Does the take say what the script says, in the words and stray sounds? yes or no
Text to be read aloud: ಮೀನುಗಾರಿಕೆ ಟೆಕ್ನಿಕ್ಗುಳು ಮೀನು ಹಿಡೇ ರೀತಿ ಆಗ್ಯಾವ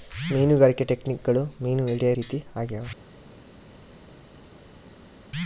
yes